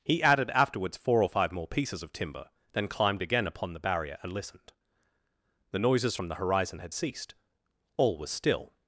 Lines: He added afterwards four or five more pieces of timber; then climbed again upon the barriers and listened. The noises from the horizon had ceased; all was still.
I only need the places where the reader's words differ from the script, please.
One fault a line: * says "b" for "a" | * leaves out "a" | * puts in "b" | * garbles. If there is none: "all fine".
* says "barrier" for "barriers"